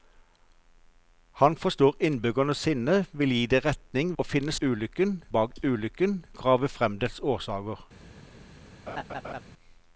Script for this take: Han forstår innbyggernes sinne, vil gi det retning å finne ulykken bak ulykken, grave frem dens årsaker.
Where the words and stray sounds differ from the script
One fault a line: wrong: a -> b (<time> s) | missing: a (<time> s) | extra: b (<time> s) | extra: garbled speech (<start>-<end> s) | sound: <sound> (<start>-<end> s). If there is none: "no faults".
sound: laugh (8.9-9.4 s)